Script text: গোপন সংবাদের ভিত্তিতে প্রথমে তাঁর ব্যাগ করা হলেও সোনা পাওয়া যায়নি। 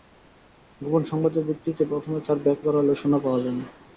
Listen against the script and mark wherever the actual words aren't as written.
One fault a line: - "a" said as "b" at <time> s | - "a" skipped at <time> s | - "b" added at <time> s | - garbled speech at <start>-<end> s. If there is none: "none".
none